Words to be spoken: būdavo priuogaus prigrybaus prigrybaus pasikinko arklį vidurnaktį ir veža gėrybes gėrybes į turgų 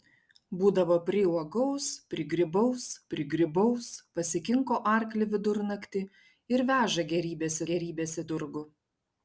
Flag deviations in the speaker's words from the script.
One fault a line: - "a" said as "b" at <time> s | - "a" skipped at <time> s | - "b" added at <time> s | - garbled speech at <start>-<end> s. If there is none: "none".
none